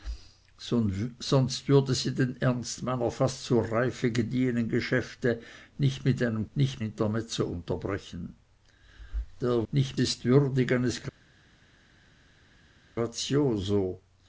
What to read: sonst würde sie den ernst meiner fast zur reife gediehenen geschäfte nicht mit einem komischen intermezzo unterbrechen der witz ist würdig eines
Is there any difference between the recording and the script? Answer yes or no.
yes